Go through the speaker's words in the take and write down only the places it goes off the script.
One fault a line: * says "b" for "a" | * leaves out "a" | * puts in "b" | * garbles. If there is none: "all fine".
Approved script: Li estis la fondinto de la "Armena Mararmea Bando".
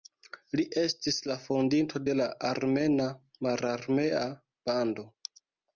all fine